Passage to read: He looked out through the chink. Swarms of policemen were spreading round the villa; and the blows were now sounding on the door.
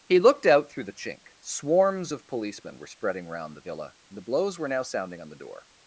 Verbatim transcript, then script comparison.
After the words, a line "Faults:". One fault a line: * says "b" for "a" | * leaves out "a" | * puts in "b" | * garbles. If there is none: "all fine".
He looked out through the chink. Swarms of policemen were spreading round the villa; and the blows were now sounding on the door.
Faults:
all fine